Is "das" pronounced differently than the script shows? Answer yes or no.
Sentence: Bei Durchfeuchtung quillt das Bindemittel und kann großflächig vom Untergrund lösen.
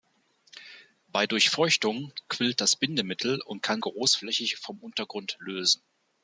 no